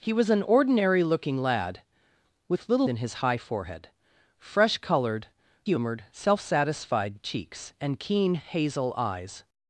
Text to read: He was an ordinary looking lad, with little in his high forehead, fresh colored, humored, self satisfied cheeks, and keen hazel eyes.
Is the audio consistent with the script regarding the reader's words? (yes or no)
yes